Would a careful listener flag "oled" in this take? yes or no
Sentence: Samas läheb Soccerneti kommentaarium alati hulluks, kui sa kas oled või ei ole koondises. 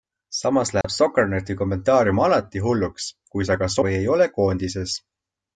yes